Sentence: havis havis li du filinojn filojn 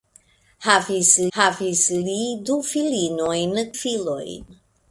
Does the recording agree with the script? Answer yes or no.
yes